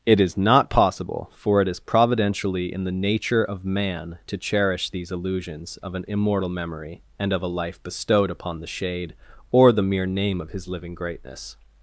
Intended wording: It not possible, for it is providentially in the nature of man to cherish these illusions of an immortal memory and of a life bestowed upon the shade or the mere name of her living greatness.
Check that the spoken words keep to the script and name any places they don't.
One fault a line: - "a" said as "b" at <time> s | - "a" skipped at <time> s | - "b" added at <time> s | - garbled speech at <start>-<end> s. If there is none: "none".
- "is" added at 0.2 s
- "her" said as "his" at 10.5 s